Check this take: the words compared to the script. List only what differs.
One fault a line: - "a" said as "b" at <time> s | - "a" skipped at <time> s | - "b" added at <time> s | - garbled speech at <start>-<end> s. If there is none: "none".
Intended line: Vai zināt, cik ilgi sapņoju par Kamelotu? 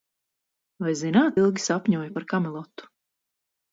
- "cik" skipped at 1.4 s